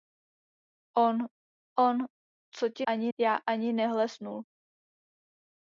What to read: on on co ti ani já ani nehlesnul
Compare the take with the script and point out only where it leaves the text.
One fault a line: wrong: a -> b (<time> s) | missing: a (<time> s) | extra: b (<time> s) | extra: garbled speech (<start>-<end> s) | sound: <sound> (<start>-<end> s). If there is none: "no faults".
no faults